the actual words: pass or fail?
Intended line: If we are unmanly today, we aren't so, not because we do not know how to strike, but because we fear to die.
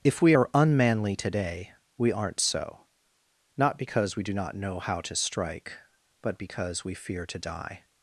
pass